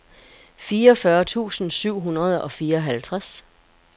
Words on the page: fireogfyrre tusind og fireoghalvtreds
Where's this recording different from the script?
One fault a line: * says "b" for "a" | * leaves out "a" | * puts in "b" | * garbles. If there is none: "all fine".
* puts in "syv hundrede"